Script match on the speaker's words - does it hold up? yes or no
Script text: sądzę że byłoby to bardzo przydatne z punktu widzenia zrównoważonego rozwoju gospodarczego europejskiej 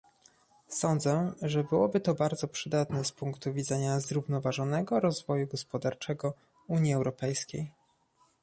no